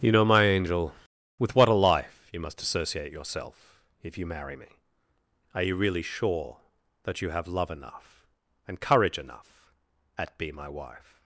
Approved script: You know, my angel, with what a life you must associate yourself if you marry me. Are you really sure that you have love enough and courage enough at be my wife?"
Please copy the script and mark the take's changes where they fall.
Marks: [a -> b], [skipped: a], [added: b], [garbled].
You know, my angel, with what a life you must associate yourself if you marry me. Are you really sure that you have love enough and courage enough at be my wife?"